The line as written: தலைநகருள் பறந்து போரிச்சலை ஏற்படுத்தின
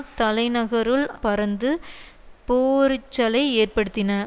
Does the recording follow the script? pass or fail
pass